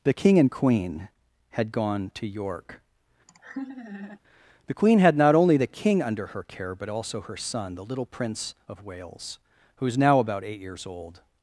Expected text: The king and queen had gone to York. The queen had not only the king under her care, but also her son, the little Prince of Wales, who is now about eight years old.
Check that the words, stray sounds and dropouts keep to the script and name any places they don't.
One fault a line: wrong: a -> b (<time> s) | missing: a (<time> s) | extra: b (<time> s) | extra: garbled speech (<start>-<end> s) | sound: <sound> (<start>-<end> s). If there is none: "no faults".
sound: laugh (3.3-4.2 s)